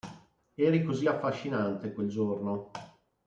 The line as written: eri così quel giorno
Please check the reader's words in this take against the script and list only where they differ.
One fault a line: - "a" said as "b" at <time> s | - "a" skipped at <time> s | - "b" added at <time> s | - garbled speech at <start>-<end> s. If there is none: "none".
- "affascinante" added at 1.1 s